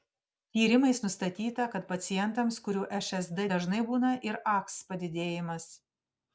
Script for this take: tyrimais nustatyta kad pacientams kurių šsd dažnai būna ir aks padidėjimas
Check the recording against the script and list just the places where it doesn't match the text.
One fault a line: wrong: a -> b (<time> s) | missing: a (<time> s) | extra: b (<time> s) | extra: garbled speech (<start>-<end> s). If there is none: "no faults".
no faults